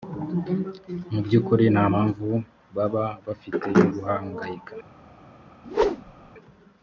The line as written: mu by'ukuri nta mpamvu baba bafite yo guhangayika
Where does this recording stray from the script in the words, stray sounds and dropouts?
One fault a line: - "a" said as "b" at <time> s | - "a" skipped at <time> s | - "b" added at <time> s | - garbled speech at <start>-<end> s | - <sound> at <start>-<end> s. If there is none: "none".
- whoosh at 5.6-6.3 s